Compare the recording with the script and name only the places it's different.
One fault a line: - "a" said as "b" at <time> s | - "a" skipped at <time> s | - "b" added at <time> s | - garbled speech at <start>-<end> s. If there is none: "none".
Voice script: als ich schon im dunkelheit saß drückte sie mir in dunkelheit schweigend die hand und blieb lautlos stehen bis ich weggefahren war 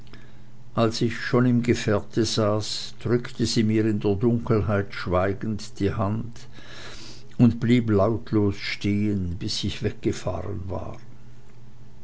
- "dunkelheit" said as "gefährte" at 1.6 s
- "der" added at 4.0 s